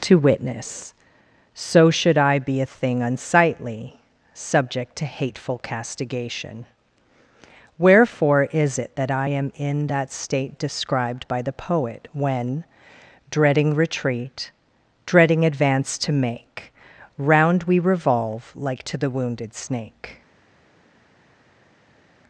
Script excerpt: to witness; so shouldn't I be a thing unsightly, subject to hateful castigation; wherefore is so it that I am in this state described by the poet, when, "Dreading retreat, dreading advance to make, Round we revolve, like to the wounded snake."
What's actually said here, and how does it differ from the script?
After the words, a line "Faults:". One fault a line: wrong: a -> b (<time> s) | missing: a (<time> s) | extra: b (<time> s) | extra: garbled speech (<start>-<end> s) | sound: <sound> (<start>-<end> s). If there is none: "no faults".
to witness; so should I be a thing unsightly, subject to hateful castigation; wherefore is it that I am in that state described by the poet, when, "Dreading retreat, dreading advance to make, Round we revolve, like to the wounded snake."
Faults:
wrong: shouldn't -> should (1.9 s)
missing: so (8.8 s)
wrong: this -> that (9.9 s)